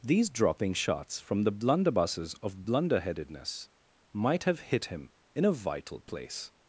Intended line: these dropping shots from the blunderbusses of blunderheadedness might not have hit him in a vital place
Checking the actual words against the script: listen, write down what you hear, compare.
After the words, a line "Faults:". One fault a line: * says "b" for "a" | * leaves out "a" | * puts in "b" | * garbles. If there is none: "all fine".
these dropping shots from the blunderbusses of blunderheadedness might have hit him in a vital place
Faults:
* leaves out "not"